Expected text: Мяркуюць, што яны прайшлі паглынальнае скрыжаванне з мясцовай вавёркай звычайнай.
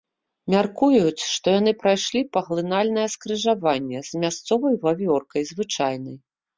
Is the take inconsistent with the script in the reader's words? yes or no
no